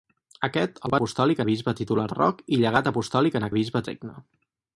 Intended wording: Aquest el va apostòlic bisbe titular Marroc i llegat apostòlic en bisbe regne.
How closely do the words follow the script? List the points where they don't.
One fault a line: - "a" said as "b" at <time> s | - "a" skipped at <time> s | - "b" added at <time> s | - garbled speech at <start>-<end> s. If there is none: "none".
none